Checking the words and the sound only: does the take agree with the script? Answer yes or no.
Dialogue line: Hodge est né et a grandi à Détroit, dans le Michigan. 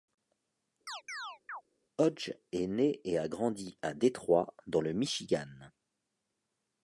no